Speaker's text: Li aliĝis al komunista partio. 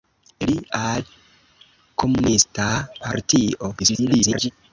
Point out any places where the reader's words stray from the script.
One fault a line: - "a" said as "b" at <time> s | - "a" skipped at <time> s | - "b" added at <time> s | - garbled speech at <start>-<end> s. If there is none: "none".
- "aliĝis" skipped at 0.5 s
- garbled speech at 3.8-4.5 s